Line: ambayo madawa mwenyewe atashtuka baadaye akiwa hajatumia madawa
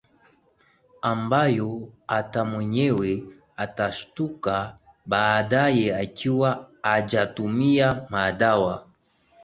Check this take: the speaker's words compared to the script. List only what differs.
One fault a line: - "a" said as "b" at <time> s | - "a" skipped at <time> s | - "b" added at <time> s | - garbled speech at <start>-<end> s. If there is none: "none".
- "madawa" said as "hata" at 2.1 s